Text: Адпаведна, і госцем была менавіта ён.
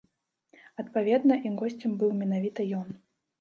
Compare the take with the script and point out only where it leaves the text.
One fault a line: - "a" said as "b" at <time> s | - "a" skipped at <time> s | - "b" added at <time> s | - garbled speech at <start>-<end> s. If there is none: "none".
- "была" said as "быў" at 2.0 s